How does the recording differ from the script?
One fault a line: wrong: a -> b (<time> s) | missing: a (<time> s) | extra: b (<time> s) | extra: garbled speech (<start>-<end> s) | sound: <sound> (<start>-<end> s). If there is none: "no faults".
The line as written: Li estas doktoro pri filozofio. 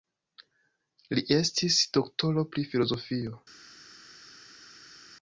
wrong: estas -> estis (1.4 s)